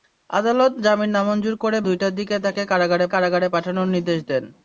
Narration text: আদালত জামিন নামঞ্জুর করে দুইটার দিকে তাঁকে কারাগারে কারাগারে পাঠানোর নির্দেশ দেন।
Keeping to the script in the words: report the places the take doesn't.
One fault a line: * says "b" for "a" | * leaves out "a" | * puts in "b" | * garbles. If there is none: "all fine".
all fine